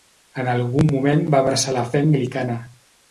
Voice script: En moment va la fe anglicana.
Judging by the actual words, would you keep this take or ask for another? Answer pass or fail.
fail